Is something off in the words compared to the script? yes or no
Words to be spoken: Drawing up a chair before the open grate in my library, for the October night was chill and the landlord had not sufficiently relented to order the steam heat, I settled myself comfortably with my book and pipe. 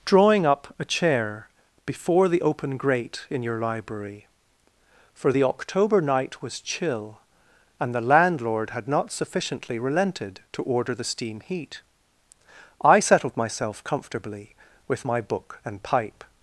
yes